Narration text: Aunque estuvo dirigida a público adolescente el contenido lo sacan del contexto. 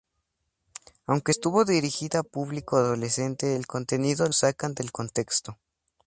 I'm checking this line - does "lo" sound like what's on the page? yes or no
no